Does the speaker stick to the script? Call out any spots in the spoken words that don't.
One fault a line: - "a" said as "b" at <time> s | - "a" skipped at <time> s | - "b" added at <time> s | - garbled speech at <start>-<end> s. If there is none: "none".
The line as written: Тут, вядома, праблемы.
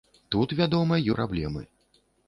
none